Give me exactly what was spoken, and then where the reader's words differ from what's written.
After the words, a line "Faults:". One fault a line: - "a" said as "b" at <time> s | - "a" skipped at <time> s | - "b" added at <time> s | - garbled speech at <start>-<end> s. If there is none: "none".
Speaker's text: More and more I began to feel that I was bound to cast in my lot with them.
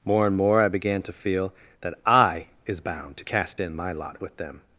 More and more I began to feel that I is bound to cast in my lot with them.
Faults:
- "was" said as "is" at 2.6 s